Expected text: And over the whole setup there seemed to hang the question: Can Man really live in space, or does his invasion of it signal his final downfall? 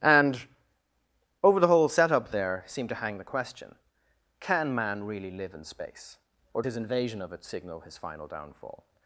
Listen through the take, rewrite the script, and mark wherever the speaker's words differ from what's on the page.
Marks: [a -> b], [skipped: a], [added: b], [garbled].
And over the whole setup there seemed to hang the question: Can Man really live in space, or [skipped: does] his invasion of it signal his final downfall?